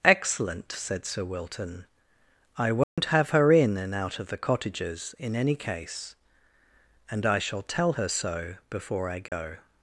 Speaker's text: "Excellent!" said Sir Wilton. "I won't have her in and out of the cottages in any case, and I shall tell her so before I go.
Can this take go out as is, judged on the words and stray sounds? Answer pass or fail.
fail